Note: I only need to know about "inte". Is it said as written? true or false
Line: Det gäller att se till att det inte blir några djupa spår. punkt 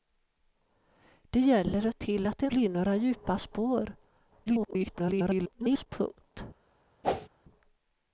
false